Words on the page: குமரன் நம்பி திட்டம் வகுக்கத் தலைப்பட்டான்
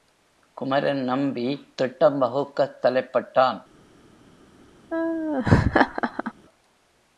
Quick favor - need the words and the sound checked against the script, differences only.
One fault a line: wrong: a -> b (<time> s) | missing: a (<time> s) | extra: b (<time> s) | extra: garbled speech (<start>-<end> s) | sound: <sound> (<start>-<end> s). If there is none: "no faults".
sound: laugh (4.9-6.3 s)